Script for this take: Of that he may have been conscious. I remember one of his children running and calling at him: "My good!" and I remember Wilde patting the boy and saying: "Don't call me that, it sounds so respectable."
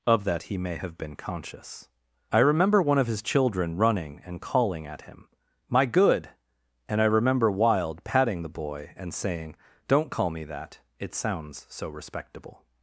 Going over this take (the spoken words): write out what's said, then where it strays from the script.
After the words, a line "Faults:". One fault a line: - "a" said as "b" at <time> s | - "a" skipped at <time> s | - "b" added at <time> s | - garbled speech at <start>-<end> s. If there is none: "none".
Of that he may have been conscious. I remember one of his children running and calling at him: "My good!" and I remember Wilde patting the boy and saying: "Don't call me that, it sounds so respectable."
Faults:
none